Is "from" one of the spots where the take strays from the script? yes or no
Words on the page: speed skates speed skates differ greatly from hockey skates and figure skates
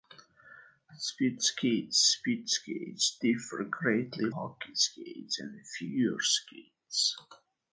yes